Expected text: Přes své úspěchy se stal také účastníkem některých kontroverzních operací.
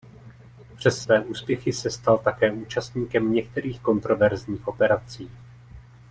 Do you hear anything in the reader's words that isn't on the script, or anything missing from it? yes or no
no